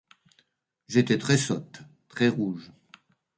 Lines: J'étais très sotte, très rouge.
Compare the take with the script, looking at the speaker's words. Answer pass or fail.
pass